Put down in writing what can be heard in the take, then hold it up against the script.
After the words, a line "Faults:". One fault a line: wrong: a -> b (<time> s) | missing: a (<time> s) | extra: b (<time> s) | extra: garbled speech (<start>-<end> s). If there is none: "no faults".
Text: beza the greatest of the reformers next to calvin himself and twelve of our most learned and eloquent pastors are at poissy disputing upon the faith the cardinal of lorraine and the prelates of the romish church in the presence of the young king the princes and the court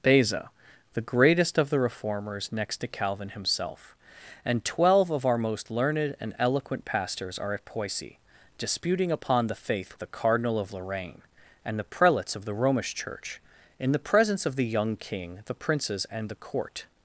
beza the greatest of the reformers next to calvin himself and twelve of our most learned and eloquent pastors are at poissy disputing upon the faith the cardinal of lorraine and the prelates of the romish church in the presence of the young king the princes and the court
Faults:
no faults